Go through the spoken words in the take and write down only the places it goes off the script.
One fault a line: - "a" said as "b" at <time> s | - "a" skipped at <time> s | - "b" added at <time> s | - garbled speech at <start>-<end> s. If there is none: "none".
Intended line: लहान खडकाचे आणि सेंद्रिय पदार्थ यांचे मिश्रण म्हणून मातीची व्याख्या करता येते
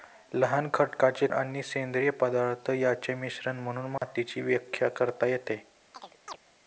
none